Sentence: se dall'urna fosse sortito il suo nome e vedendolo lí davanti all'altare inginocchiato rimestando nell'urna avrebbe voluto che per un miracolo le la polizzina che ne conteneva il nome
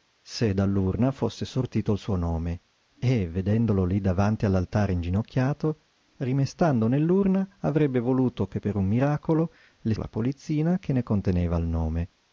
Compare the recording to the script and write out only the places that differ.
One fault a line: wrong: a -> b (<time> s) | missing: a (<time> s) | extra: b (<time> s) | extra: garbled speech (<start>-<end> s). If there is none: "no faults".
no faults